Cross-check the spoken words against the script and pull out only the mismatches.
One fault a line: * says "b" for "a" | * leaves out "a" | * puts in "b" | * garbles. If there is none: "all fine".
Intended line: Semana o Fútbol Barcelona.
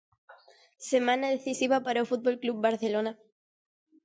* puts in "decisiva para"
* puts in "Club"